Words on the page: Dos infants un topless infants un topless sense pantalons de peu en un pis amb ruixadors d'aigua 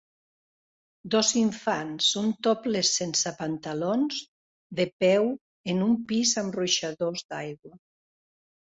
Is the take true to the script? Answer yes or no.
no